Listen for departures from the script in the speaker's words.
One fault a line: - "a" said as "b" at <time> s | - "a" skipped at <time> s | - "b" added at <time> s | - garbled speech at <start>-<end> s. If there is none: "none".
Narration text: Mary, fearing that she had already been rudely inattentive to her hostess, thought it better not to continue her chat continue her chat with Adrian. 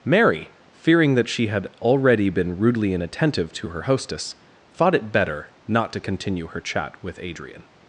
- "continue her chat" skipped at 7.0 s